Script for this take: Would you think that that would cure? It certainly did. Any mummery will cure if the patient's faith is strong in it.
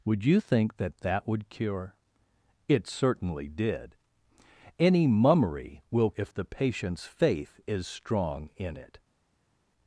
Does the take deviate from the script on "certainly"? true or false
false